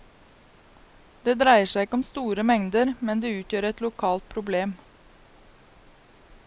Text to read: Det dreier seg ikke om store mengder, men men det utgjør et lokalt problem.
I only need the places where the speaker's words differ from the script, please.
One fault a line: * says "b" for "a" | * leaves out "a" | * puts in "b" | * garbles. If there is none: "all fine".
* leaves out "men"